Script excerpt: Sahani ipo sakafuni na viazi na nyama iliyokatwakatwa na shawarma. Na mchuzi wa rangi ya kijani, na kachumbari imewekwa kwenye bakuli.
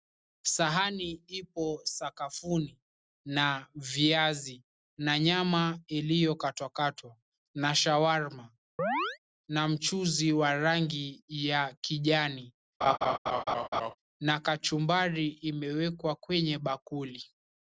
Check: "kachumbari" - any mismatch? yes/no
no